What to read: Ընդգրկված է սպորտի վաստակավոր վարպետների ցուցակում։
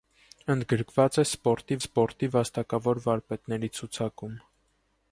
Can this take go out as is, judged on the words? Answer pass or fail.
fail